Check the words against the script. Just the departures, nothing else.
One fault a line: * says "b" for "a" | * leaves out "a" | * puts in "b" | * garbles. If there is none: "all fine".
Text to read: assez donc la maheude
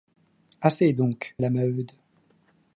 all fine